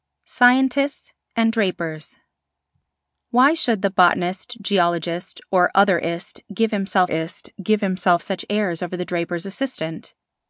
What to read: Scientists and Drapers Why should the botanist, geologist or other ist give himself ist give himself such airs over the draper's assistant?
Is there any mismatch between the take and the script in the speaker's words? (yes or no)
no